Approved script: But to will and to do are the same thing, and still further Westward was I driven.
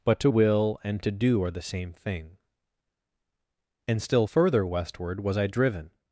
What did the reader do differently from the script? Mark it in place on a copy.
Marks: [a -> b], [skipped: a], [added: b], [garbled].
But to will and to do are the same thing, and still further Westward was I driven.